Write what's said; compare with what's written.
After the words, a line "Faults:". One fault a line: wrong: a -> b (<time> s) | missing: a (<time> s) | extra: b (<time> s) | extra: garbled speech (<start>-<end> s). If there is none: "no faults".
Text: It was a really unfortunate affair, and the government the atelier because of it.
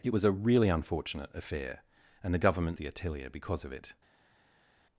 It was a really unfortunate affair, and the government the atelier because of it.
Faults:
no faults